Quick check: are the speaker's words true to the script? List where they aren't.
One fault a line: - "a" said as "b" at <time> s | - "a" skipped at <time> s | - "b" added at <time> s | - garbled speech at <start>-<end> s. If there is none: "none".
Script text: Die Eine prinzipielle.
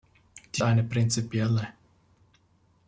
none